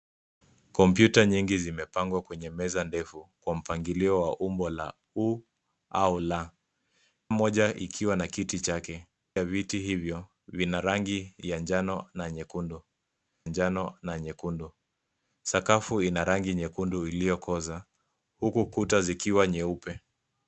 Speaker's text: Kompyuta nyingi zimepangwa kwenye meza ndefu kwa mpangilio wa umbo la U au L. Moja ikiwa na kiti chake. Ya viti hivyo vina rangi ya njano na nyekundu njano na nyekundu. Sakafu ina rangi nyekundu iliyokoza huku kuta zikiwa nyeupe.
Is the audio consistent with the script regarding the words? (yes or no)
yes